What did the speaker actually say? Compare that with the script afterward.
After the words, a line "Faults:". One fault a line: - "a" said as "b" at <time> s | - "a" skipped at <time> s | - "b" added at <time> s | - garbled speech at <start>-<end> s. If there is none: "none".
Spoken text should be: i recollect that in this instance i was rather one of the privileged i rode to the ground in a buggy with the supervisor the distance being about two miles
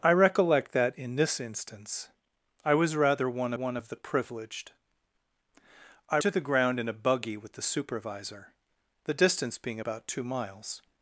i recollect that in this instance i was rather one one of the privileged i to the ground in a buggy with the supervisor the distance being about two miles
Faults:
- "one" added at 3.5 s
- "rode" skipped at 6.2 s